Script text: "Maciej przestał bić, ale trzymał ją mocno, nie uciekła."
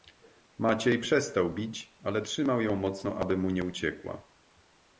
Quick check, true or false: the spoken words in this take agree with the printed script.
false